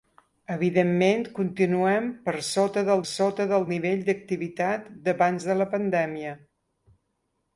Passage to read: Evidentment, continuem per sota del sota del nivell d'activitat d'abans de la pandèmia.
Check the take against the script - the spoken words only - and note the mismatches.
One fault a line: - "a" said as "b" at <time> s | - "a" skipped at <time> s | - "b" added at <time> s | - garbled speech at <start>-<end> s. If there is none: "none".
none